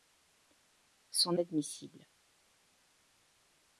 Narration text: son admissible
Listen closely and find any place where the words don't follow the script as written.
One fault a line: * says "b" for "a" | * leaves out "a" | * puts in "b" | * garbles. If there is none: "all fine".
all fine